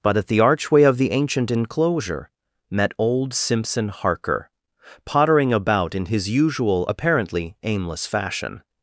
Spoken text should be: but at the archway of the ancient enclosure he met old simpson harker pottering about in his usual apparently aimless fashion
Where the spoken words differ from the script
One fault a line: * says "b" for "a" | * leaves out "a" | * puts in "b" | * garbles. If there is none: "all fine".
* leaves out "he"